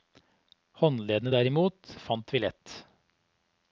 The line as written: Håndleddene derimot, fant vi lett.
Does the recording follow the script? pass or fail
pass